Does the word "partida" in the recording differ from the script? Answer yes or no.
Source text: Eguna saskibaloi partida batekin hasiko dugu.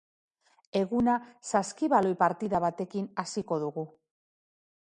no